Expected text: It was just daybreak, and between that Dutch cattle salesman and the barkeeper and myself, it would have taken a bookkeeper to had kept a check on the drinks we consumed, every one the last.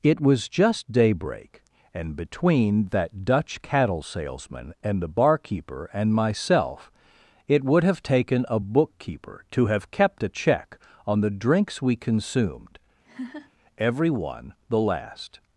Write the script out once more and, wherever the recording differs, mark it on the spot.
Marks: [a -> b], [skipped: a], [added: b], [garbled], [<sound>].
It was just daybreak, and between that Dutch cattle salesman and the barkeeper and myself, it would have taken a bookkeeper to [had -> have] kept a check on the drinks we consumed, [laugh] every one the last.